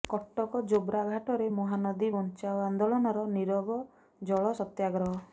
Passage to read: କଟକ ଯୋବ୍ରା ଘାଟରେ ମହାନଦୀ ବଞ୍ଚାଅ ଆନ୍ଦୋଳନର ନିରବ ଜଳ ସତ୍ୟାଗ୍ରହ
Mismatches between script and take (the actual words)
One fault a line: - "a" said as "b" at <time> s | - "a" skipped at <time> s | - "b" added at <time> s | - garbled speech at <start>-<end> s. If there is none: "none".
none